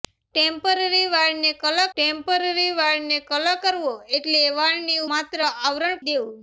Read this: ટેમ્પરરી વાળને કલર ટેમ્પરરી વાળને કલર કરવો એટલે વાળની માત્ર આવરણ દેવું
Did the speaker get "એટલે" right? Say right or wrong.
right